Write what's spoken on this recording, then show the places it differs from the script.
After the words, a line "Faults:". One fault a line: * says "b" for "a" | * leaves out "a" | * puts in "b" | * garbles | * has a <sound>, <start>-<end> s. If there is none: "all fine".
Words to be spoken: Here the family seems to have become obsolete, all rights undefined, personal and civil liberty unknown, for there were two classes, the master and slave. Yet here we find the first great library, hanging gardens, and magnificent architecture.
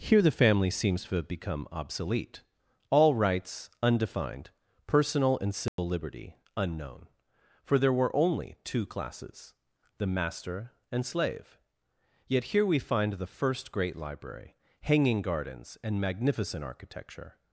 Here the family seems to have become obsolete, all rights undefined, personal and civil liberty unknown, for there were only two classes, the master and slave. Yet here we find the first great library, hanging gardens, and magnificent architecture.
Faults:
* has a dropout, 5.7-5.8 s
* puts in "only"